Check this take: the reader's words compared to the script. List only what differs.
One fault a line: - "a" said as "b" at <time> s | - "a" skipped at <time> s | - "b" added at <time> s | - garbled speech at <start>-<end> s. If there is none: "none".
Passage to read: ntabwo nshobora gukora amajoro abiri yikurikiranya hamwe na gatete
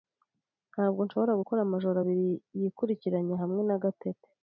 none